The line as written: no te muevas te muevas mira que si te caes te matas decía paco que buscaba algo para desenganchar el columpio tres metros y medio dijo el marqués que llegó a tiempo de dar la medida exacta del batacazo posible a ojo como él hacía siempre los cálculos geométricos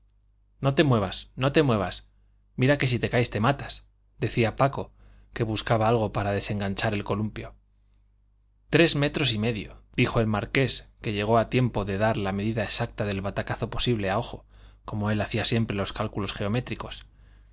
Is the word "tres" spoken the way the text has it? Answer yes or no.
yes